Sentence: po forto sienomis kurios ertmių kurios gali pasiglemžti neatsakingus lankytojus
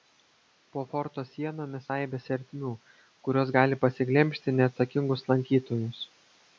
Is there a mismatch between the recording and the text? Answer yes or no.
yes